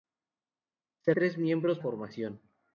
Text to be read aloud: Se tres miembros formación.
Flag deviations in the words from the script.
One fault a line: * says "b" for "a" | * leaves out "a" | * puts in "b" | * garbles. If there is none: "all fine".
all fine